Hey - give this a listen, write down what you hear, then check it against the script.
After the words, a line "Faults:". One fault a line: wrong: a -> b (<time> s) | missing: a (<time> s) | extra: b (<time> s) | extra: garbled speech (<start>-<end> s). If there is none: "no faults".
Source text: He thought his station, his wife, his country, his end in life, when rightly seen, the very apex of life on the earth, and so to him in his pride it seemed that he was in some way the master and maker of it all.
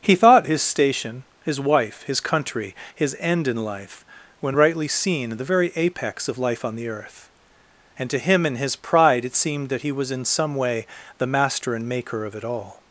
He thought his station, his wife, his country, his end in life, when rightly seen, the very apex of life on the earth, and to him in his pride it seemed that he was in some way the master and maker of it all.
Faults:
missing: so (8.1 s)